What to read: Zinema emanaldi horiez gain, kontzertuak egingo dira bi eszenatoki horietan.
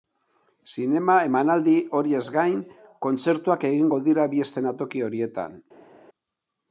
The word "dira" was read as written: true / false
true